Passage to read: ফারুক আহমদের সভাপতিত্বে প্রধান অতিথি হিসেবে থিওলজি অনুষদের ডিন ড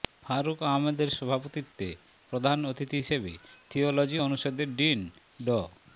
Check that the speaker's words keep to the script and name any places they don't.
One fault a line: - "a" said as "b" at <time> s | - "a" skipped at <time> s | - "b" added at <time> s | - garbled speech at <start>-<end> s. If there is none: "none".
none